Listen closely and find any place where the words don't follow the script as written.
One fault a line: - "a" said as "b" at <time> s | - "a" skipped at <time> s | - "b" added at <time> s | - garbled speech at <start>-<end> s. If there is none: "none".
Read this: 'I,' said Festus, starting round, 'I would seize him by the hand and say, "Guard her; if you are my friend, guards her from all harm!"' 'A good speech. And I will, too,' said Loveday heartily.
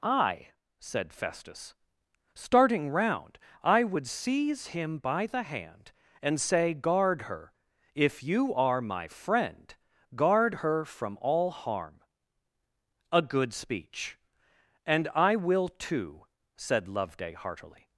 - "guards" said as "guard" at 10.1 s